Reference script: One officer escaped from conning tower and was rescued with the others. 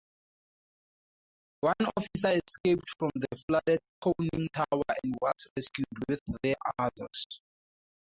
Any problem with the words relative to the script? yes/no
yes